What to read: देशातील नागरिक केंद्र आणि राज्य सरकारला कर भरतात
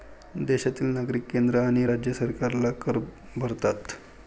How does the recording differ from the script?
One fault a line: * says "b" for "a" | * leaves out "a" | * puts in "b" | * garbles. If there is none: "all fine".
all fine